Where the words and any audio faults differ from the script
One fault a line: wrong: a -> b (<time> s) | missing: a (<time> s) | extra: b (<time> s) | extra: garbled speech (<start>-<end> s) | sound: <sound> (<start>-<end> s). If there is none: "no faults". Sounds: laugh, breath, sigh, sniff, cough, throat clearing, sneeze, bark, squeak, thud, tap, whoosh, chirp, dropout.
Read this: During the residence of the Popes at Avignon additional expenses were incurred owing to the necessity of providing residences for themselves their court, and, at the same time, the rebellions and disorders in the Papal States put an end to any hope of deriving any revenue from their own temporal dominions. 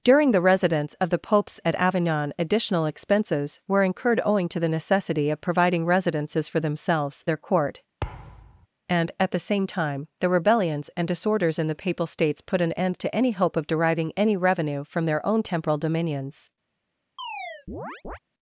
sound: thud (8.0-8.7 s)
sound: chirp (17.2-18.2 s)